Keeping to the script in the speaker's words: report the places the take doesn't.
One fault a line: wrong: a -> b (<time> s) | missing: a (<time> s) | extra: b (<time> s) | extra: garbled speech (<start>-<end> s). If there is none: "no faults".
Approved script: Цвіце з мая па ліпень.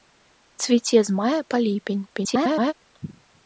extra: garbled speech (2.1-2.7 s)